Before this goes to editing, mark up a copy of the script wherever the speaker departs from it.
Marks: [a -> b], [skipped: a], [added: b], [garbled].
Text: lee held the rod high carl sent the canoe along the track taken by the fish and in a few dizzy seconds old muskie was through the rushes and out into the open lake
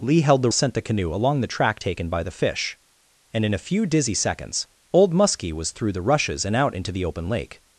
lee held the [skipped: rod high carl] sent the canoe along the track taken by the fish and in a few dizzy seconds old muskie was through the rushes and out into the open lake